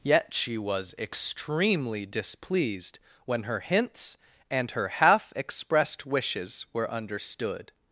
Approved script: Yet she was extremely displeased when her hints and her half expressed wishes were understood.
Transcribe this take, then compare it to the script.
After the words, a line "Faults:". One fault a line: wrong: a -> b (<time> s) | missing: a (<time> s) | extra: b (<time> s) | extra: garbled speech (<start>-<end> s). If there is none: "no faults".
Yet she was extremely displeased when her hints and her half expressed wishes were understood.
Faults:
no faults